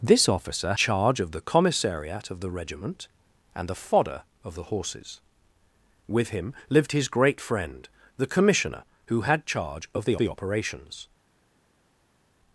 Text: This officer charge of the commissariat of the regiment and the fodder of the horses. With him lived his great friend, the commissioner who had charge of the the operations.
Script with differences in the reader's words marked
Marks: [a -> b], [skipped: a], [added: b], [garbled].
This officer charge of the commissariat of the regiment and the fodder of the horses. With him lived his great friend, the commissioner who had charge of the the operations.